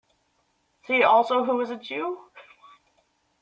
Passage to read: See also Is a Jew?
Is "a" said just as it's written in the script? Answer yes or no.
yes